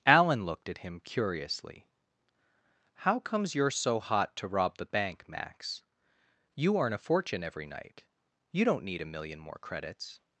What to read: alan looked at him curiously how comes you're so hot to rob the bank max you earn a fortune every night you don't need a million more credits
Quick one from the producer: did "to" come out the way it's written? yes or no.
yes